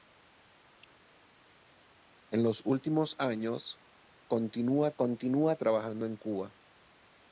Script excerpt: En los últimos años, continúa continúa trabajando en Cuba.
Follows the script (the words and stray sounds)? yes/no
yes